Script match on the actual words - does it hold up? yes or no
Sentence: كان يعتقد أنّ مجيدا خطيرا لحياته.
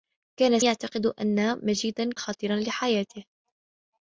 yes